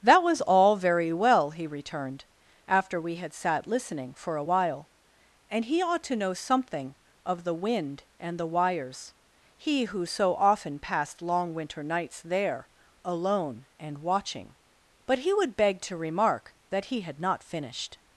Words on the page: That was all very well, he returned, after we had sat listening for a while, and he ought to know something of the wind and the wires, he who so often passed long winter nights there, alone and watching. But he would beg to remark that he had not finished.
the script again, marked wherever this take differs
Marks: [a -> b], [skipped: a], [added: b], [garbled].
That was all very well, he returned, after we had sat listening for a while, and he ought to know something of the wind and the wires, he who so often passed long winter nights there, alone and watching. But he would beg to remark that he had not finished.